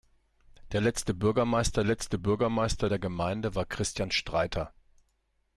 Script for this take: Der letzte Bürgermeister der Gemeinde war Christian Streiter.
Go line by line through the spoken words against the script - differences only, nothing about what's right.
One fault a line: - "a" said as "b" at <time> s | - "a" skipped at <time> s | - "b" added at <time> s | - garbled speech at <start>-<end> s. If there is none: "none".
- "letzte Bürgermeister" added at 1.8 s